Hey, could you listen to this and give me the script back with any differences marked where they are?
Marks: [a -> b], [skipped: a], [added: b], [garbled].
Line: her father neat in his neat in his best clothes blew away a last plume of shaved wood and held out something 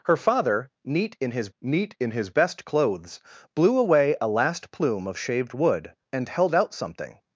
her father neat in his neat in his best clothes blew away a last plume of shaved wood and held out something